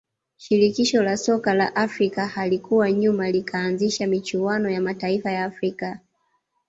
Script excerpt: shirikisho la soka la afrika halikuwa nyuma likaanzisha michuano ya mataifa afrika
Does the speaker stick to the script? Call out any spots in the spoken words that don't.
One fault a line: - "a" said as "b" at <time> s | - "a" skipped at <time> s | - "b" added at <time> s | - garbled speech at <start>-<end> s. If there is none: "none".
- "ya" added at 5.3 s